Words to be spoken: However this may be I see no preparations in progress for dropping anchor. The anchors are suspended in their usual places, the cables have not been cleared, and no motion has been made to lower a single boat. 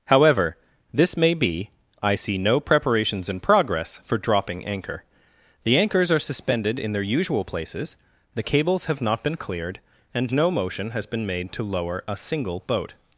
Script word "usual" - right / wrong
right